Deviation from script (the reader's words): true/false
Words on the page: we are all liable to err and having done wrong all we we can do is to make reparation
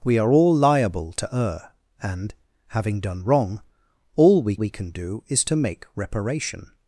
false